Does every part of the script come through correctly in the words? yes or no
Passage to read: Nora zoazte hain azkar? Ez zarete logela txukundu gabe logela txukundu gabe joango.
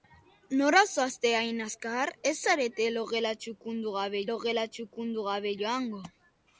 yes